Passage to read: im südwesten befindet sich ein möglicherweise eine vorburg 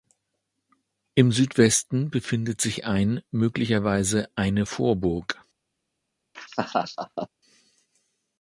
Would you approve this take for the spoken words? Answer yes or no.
yes